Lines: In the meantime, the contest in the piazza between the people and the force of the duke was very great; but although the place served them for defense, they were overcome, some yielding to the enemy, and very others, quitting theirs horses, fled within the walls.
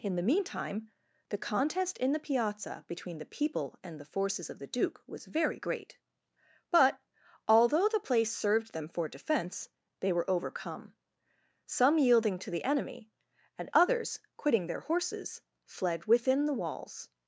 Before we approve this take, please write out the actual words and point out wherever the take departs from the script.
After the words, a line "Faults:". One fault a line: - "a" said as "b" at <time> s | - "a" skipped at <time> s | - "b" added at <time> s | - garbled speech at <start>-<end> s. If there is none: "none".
In the meantime, the contest in the piazza between the people and the forces of the duke was very great; but although the place served them for defense, they were overcome, some yielding to the enemy, and others, quitting their horses, fled within the walls.
Faults:
- "force" said as "forces" at 4.1 s
- "very" skipped at 13.7 s
- "theirs" said as "their" at 14.7 s